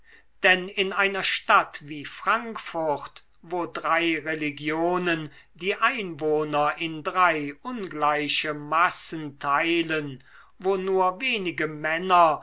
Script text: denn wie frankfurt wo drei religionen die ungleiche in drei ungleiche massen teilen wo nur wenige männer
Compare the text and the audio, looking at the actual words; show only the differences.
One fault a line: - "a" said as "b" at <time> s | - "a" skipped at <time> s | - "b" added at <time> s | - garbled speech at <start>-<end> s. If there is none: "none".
- "in einer stadt" added at 0.7 s
- "ungleiche" said as "einwohner" at 5.8 s